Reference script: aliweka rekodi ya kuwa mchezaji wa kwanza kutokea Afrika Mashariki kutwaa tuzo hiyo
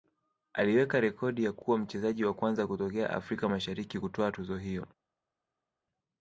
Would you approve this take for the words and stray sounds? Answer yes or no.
yes